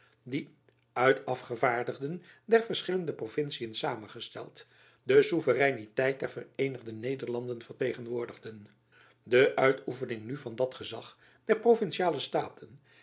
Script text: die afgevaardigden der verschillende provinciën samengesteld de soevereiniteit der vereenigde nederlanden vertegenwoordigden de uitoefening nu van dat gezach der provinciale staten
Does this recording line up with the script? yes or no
no